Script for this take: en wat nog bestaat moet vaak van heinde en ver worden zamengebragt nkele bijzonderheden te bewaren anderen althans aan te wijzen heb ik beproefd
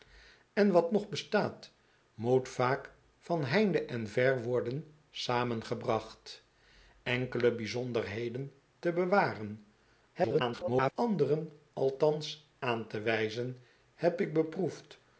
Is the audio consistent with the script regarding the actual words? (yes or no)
no